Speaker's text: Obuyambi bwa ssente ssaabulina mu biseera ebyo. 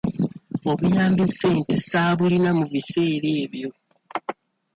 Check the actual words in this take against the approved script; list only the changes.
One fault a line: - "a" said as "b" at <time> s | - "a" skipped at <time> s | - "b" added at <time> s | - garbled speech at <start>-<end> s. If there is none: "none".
- "bwa" skipped at 1.2 s